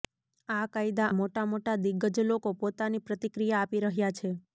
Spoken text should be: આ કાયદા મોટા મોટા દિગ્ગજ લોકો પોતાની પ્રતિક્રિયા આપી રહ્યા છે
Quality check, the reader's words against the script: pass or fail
pass